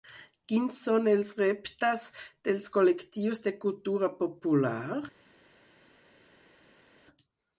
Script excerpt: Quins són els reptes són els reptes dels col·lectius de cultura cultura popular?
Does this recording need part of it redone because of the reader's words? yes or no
yes